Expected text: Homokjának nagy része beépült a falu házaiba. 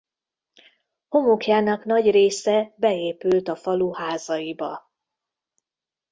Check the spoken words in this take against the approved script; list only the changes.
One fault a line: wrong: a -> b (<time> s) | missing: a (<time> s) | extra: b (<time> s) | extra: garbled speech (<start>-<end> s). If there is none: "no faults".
no faults